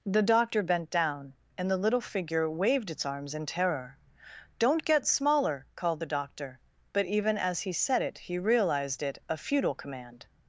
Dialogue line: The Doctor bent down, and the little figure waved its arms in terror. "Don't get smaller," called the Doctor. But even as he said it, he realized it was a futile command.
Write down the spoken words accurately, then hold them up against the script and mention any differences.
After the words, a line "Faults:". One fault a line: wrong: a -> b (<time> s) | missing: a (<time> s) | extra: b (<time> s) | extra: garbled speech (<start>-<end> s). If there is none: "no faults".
The Doctor bent down, and the little figure waved its arms in terror. "Don't get smaller," called the Doctor. But even as he said it, he realized it a futile command.
Faults:
missing: was (9.2 s)